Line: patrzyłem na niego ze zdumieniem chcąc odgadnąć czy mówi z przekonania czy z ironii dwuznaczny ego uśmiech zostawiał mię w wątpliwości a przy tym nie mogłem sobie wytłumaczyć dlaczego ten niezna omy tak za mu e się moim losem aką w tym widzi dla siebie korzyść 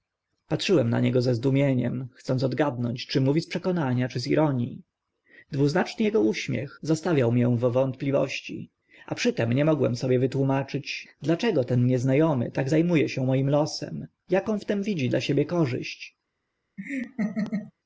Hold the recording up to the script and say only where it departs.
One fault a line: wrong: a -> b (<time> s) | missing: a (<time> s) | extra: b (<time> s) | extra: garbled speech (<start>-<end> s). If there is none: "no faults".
no faults